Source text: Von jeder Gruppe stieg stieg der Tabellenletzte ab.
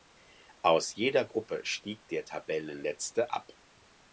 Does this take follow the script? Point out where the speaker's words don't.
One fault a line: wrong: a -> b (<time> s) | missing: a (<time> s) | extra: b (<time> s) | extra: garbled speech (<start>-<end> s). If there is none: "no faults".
wrong: Von -> Aus (0.6 s)
missing: stieg (2.1 s)